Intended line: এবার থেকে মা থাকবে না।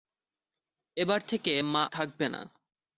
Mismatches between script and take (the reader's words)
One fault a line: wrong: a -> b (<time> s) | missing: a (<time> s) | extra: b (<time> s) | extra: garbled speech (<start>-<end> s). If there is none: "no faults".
no faults